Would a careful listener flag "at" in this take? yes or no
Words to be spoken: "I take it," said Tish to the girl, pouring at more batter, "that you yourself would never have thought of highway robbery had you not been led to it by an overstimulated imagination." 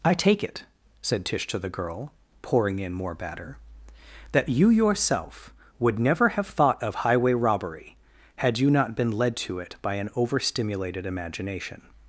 yes